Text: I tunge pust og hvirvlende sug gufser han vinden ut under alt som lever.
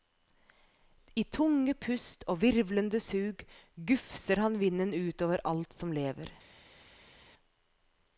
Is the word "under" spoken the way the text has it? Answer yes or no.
no